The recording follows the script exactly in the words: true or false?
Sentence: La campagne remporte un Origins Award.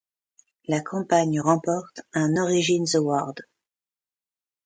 true